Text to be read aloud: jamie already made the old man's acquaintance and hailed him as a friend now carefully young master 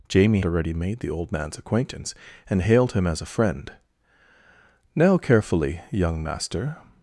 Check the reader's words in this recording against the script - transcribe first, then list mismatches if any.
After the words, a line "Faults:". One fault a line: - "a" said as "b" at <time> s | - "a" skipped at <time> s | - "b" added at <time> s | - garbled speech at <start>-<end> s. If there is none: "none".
jamie already made the old man's acquaintance and hailed him as a friend now carefully young master
Faults:
none